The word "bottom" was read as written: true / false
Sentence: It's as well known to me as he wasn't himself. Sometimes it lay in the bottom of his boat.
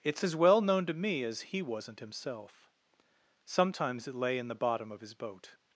true